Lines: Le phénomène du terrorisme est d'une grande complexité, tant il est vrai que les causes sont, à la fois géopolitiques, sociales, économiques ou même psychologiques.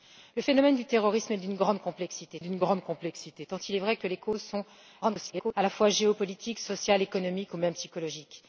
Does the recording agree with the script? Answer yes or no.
no